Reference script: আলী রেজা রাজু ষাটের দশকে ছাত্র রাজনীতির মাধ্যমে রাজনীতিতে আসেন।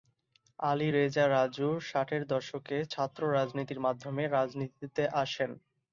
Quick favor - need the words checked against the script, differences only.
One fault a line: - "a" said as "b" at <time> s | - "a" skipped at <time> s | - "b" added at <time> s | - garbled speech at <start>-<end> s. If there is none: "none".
none